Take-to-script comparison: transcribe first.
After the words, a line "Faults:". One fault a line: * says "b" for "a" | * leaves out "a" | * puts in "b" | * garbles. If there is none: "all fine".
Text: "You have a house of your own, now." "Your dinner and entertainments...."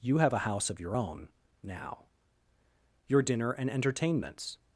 "You have a house of your own, now." "Your dinner and entertainments...."
Faults:
all fine